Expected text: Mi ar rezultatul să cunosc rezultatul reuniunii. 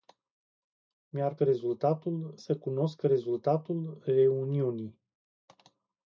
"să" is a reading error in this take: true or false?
false